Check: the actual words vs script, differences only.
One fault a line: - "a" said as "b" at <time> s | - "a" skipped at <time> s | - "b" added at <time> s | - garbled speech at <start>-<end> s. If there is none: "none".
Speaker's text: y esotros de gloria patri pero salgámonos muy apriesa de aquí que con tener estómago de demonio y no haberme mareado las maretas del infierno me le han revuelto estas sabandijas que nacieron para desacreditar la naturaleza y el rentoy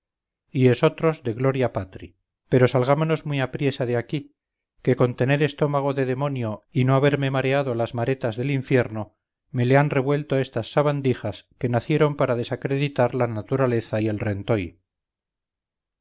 none